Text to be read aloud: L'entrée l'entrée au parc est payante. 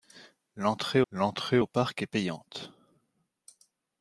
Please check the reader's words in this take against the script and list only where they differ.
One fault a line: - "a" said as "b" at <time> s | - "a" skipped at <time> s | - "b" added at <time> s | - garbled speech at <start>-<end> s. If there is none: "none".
none